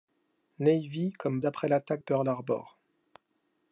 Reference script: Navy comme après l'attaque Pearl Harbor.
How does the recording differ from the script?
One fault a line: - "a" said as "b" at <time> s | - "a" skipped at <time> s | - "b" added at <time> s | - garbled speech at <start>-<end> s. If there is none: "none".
none